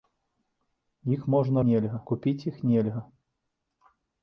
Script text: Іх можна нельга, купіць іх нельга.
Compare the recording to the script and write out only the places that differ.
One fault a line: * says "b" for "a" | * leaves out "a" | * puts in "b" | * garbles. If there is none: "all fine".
all fine